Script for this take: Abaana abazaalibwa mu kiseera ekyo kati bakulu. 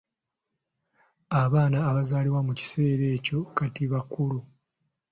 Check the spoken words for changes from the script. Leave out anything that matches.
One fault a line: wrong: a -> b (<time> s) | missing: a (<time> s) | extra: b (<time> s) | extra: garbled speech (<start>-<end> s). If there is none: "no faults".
no faults